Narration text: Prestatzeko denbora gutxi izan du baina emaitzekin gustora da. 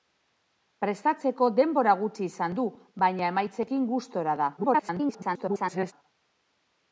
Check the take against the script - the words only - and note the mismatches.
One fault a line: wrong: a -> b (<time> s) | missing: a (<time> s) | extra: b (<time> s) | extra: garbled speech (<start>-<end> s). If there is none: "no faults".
extra: garbled speech (4.6-5.9 s)